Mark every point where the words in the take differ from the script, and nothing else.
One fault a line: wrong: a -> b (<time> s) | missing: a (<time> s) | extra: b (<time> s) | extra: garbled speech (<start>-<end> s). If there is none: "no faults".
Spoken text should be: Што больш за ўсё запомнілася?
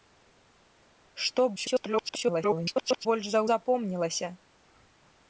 extra: garbled speech (1.6-3.1 s)
missing: ўсё (3.4 s)